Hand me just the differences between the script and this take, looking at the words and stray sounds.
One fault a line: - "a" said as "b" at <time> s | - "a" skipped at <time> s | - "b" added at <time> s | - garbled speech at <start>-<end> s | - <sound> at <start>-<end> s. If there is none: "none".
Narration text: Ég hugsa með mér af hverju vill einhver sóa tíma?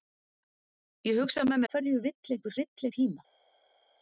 - "mér af" skipped at 1.6 s
- "sóa" said as "vill" at 2.6 s